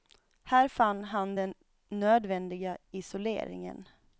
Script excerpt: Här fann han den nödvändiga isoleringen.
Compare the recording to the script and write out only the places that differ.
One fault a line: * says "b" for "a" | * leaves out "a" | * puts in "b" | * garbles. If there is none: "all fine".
all fine